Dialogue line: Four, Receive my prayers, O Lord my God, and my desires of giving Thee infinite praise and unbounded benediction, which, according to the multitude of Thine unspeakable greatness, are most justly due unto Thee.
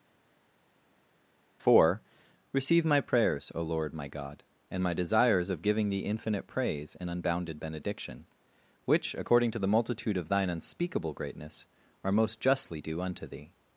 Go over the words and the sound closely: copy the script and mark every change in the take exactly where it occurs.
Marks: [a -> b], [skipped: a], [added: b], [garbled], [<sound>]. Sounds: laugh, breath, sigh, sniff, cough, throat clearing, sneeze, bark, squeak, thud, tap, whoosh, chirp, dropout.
Four, Receive my prayers, O Lord my God, and my desires of giving Thee infinite praise and unbounded benediction, which, according to the multitude of Thine unspeakable greatness, are most justly due unto Thee.